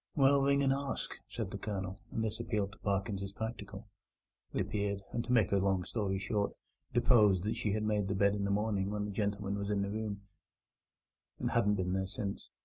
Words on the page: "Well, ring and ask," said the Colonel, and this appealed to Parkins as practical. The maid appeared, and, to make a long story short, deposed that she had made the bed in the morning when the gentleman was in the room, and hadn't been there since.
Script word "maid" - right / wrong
wrong